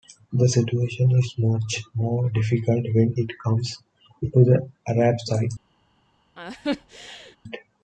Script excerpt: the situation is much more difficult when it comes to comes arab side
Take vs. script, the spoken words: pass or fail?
fail